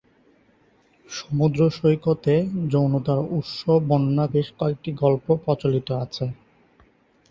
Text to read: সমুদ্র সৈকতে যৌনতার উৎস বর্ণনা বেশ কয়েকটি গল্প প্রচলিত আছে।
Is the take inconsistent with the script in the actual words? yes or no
no